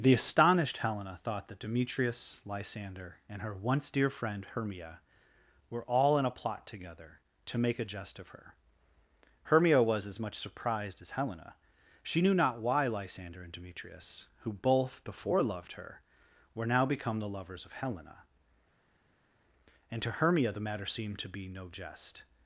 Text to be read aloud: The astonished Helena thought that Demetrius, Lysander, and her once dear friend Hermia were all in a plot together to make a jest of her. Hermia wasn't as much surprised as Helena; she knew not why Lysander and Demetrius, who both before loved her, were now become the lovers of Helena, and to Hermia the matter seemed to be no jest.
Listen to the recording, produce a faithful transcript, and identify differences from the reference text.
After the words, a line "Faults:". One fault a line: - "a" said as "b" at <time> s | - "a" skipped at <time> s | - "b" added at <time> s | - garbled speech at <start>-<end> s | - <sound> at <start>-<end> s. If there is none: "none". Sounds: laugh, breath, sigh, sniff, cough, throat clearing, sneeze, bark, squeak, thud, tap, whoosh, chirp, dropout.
The astonished Helena thought that Demetrius, Lysander, and her once dear friend Hermia were all in a plot together to make a jest of her. Hermia was as much surprised as Helena; she knew not why Lysander and Demetrius, who both before loved her, were now become the lovers of Helena, and to Hermia the matter seemed to be no jest.
Faults:
- "wasn't" said as "was" at 9.8 s